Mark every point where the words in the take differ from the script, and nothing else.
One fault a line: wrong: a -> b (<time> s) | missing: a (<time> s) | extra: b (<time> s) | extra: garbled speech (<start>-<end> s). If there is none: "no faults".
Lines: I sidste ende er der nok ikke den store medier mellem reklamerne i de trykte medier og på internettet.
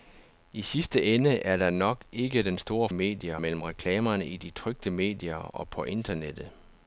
no faults